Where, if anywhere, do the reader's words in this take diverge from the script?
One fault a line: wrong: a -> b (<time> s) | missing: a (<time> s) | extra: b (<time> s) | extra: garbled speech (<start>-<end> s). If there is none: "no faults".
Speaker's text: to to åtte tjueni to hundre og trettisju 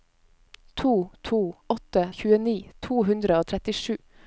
no faults